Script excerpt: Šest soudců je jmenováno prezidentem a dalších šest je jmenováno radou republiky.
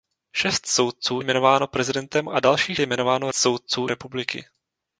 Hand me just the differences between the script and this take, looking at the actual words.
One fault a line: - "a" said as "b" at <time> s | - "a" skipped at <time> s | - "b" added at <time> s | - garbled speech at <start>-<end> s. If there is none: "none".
- "je" skipped at 1.2 s
- "šest" skipped at 2.8 s
- "radou" said as "soudců" at 3.3 s